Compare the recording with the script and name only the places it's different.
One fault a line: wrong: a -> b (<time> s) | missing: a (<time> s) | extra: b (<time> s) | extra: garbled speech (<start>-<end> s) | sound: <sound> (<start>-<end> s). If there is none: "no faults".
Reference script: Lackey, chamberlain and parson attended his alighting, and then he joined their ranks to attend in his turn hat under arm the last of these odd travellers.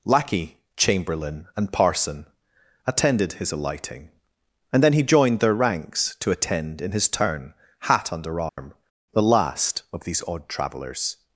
sound: dropout (8.5-8.6 s)